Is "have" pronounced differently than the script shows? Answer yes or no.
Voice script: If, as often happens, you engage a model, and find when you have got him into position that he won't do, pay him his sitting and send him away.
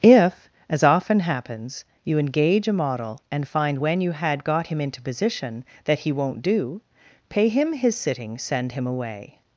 yes